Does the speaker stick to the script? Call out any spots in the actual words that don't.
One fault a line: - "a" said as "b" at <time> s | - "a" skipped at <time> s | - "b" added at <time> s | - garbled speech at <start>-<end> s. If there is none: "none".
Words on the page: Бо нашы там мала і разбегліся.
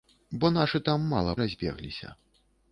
none